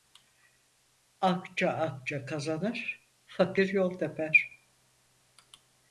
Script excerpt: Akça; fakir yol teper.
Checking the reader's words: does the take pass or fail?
fail